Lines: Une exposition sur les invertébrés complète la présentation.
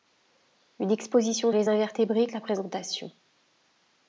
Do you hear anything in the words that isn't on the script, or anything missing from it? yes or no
yes